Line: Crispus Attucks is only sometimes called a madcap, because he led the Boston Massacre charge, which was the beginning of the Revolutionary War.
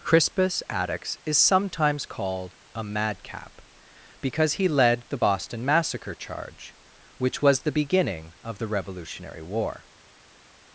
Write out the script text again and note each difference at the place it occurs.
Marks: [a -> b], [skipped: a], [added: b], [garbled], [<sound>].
Crispus Attucks is [skipped: only] sometimes called a madcap, because he led the Boston Massacre charge, which was the beginning of the Revolutionary War.